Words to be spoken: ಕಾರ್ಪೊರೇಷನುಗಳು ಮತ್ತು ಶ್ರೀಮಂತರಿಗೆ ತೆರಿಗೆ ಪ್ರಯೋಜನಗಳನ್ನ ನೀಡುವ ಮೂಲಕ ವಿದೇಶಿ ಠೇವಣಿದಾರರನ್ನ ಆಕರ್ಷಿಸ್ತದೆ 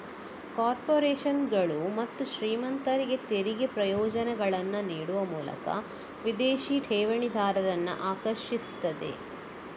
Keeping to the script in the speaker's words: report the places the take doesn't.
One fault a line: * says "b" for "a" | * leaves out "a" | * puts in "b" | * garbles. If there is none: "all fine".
all fine